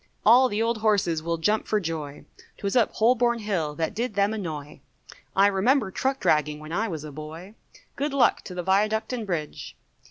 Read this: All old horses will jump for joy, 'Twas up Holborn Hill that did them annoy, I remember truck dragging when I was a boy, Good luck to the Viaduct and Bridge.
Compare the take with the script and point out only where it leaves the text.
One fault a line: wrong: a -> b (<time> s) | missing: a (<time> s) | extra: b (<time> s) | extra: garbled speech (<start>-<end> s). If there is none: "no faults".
extra: the (0.5 s)